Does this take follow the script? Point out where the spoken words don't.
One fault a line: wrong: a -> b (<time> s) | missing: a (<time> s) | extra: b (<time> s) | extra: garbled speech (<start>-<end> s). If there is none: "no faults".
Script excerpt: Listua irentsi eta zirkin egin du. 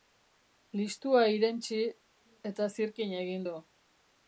no faults